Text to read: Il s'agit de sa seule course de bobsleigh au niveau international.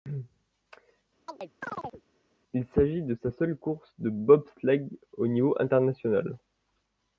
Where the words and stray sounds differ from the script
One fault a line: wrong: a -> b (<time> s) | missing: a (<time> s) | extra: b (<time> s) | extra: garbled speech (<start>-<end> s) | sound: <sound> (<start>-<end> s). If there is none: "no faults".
sound: chirp (1.3-2.0 s)